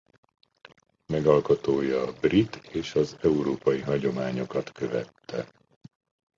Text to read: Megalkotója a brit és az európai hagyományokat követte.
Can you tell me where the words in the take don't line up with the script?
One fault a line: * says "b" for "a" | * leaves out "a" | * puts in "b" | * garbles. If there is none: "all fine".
all fine